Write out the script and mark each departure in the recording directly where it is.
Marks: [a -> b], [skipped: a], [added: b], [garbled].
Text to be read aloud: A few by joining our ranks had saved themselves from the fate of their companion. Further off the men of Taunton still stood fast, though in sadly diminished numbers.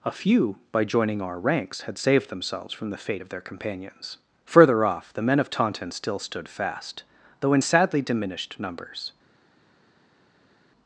A few by joining our ranks had saved themselves from the fate of their [companion. -> companions] Further off the men of Taunton still stood fast, though in sadly diminished numbers.